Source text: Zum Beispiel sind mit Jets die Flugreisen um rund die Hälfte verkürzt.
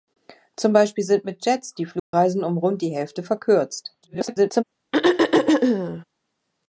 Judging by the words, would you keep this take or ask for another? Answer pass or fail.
fail